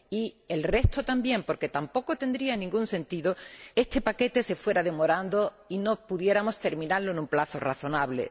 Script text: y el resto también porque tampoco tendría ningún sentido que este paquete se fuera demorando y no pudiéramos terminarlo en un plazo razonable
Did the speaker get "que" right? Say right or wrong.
wrong